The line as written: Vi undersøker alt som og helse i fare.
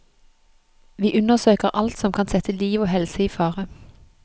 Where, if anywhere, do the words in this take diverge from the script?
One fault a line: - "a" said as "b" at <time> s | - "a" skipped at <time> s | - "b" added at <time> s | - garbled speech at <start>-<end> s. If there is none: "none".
- "kan sette liv" added at 2.1 s